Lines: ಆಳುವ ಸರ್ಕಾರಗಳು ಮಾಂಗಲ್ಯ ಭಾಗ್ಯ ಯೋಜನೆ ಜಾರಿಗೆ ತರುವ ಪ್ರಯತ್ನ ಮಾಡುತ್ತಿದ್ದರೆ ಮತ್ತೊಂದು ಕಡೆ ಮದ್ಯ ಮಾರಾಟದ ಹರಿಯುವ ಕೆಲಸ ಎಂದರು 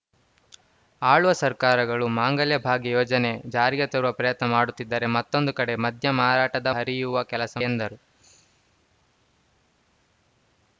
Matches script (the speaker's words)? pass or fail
pass